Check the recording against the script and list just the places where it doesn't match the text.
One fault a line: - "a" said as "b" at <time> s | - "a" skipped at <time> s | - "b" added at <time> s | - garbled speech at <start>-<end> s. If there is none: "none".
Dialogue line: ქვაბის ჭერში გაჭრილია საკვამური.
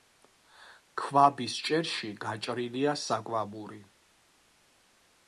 none